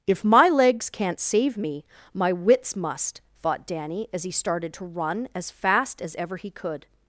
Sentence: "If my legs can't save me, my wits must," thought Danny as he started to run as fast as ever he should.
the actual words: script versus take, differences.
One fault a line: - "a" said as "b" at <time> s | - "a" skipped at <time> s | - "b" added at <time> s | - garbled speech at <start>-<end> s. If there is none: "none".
- "should" said as "could" at 6.5 s